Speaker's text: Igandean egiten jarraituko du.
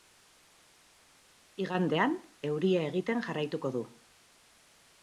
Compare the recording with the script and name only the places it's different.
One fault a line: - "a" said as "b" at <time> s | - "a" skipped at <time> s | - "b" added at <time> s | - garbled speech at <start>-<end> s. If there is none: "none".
- "euria" added at 2.5 s